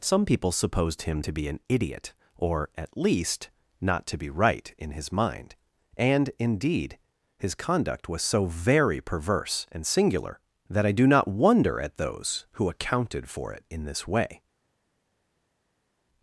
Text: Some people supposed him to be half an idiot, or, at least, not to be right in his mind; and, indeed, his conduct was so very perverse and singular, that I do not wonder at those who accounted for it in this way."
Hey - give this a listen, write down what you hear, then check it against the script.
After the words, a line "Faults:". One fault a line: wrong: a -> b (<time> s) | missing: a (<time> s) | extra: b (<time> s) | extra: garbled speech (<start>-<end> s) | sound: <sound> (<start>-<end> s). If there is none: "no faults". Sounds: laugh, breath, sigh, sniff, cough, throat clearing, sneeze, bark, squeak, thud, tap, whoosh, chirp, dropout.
Some people supposed him to be an idiot, or, at least, not to be right in his mind; and, indeed, his conduct was so very perverse and singular, that I do not wonder at those who accounted for it in this way."
Faults:
missing: half (1.5 s)